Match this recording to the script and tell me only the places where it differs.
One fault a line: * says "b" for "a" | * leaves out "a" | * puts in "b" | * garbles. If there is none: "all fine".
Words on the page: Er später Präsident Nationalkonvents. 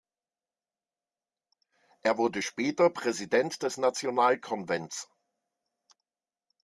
* puts in "wurde"
* puts in "des"